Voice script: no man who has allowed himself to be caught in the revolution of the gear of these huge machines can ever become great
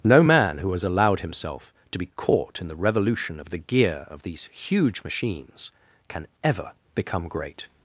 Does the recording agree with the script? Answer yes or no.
yes